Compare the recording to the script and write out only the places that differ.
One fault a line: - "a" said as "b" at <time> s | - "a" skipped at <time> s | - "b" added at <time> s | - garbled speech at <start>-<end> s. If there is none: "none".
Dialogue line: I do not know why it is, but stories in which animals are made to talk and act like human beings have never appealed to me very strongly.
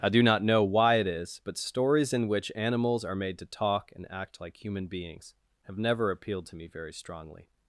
none